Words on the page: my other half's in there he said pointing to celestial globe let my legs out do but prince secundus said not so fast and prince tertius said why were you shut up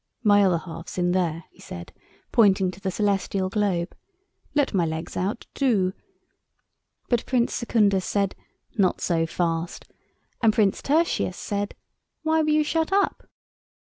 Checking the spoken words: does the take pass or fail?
fail